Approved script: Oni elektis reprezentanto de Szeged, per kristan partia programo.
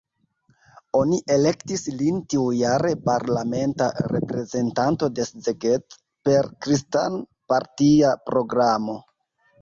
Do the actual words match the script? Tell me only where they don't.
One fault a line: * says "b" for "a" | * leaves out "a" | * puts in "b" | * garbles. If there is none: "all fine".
* puts in "lin tiujare parlamenta"